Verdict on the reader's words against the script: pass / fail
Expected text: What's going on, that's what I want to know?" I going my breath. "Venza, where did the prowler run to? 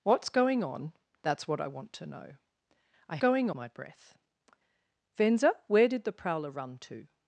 pass